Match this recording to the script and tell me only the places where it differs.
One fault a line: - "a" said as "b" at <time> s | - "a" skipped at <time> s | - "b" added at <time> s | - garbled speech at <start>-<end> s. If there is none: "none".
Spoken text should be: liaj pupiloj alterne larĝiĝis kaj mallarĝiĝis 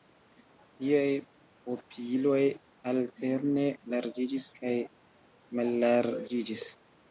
none